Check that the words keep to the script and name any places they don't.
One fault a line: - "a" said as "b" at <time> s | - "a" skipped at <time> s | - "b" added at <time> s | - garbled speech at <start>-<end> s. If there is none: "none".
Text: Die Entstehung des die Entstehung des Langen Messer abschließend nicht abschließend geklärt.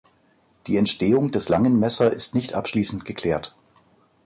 - "die Entstehung des" skipped at 1.5 s
- "abschließend" said as "ist" at 2.1 s